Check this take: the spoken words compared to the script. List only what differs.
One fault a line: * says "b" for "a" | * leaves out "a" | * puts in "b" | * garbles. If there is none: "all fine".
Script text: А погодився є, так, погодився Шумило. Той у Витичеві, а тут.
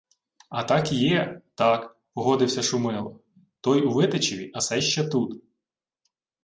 * says "так" for "погодився"
* puts in "сей ще"